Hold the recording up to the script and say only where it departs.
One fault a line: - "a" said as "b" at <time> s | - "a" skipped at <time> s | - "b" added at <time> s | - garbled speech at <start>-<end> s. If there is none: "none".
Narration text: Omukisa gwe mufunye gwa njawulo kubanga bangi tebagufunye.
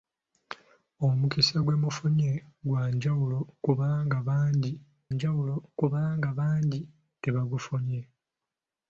- "njawulo kubanga bangi" added at 5.1 s